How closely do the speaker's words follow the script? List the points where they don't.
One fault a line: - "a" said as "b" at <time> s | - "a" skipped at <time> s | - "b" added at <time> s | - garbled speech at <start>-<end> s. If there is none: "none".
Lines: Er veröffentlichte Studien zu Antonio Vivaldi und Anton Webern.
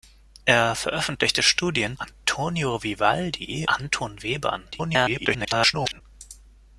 - "zu" skipped at 2.0 s
- "und" skipped at 3.7 s
- garbled speech at 4.7-6.0 s